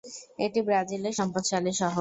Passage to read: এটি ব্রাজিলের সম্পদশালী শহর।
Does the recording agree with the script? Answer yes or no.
yes